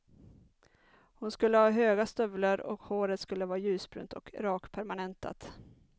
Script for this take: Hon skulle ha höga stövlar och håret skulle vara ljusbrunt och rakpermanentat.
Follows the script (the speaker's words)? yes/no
yes